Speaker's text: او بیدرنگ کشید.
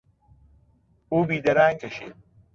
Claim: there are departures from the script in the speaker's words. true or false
false